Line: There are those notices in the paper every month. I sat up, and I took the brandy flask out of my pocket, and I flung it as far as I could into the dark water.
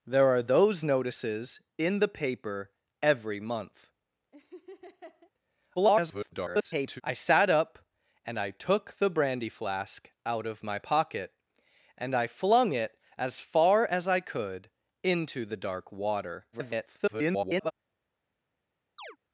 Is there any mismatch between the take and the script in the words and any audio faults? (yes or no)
yes